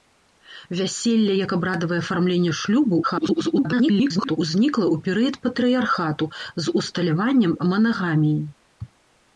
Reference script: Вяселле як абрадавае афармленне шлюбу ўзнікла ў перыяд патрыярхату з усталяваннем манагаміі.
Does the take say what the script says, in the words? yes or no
no